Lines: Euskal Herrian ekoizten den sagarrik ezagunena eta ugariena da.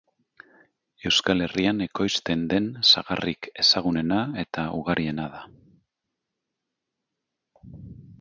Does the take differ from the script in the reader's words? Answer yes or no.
no